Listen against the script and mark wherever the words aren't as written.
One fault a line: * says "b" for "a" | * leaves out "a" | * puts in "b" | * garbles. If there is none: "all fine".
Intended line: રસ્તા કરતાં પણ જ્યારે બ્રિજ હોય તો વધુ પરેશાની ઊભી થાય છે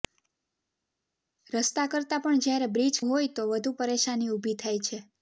all fine